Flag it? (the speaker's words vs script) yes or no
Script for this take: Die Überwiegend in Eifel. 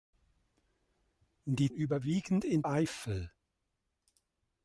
no